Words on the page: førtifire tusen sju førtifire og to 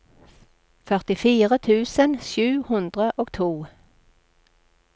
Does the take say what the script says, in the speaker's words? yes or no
no